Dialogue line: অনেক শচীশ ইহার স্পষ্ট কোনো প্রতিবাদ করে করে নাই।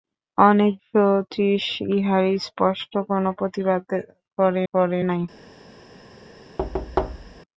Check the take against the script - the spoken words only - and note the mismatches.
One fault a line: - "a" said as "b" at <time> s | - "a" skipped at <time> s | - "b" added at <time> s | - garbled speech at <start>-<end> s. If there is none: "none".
none